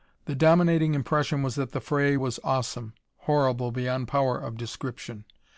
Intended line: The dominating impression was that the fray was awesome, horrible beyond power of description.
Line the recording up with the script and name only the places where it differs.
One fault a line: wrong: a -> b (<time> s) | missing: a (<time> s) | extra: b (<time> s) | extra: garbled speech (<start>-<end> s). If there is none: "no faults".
no faults